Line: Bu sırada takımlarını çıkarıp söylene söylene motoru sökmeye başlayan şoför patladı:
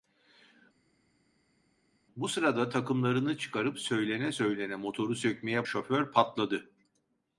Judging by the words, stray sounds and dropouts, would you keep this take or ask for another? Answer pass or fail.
fail